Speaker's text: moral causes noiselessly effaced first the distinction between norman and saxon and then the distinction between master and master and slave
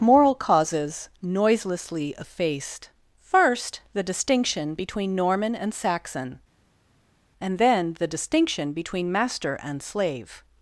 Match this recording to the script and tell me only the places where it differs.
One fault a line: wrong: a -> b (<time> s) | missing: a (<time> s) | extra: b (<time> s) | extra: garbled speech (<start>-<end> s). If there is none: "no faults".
missing: master and (9.8 s)